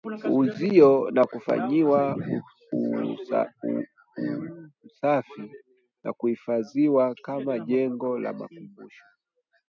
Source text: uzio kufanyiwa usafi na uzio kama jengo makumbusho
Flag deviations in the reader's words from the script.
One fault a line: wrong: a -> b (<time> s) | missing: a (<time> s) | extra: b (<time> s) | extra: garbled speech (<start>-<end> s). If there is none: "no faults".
extra: na (1.1 s)
wrong: uzio -> kuhifadhiwa (6.1 s)
extra: la (8.2 s)